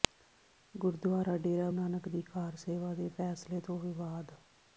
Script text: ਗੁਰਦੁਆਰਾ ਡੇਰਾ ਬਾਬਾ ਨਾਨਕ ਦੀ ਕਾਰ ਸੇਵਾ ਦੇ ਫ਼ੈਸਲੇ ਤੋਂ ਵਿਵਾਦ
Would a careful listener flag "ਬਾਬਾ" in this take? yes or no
yes